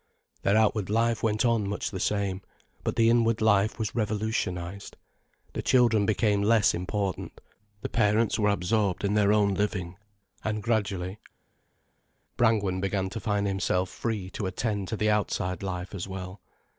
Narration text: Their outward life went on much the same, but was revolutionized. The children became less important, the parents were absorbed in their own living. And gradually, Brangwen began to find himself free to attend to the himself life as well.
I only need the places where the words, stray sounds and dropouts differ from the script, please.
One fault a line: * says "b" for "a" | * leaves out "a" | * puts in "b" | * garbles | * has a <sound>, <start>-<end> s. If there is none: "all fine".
* puts in "the inward life"
* says "outside" for "himself"